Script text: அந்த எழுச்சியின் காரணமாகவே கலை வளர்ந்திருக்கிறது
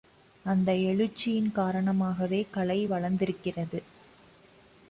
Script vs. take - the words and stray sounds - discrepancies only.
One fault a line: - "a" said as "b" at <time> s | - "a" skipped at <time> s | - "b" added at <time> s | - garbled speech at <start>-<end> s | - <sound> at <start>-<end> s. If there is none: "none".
none